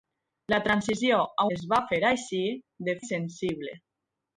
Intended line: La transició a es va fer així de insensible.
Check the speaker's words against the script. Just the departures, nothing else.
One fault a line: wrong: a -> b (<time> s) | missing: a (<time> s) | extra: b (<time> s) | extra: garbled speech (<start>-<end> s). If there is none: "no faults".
no faults